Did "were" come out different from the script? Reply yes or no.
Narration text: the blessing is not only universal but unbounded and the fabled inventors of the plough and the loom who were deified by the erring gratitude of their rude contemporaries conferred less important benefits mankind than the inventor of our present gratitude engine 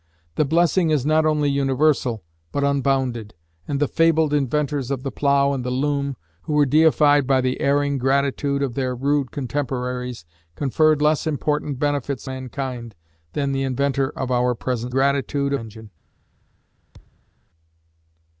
no